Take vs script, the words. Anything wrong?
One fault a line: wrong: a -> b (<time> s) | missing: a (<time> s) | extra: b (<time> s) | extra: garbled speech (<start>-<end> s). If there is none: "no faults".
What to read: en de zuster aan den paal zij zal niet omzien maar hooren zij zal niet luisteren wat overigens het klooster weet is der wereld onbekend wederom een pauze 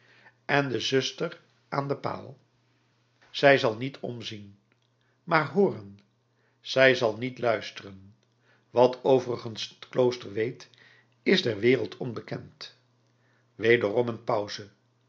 no faults